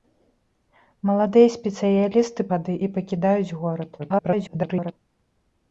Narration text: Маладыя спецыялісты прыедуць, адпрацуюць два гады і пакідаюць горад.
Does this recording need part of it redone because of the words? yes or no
yes